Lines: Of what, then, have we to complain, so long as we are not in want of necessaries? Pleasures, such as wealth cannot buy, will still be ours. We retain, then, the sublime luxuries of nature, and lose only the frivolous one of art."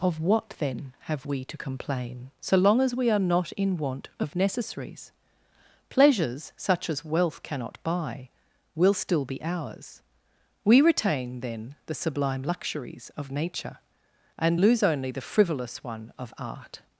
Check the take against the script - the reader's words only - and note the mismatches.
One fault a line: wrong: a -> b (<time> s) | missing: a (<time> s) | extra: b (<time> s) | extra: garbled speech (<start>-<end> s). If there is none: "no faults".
no faults